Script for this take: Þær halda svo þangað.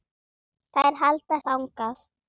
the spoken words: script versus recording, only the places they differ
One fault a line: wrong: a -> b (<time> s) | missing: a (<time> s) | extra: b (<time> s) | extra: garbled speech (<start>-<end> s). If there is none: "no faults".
missing: svo (1.4 s)